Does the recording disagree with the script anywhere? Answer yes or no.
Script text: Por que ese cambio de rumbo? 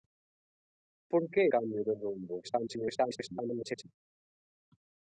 yes